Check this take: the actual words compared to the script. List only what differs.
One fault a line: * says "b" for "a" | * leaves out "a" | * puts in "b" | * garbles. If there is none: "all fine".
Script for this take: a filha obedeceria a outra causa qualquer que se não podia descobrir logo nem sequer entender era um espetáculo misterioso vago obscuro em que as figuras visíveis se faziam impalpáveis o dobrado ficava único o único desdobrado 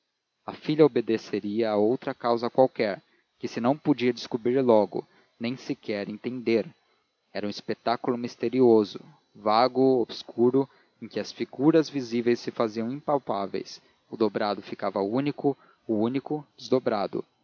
all fine